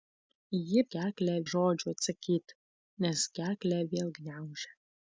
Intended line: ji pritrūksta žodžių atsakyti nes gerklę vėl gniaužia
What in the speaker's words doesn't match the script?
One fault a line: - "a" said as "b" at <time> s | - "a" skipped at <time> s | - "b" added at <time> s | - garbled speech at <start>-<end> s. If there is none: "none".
- "pritrūksta" said as "gerklę" at 1.0 s